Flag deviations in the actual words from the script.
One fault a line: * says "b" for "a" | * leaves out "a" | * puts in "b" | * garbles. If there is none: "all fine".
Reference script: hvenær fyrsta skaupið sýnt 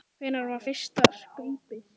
* puts in "var"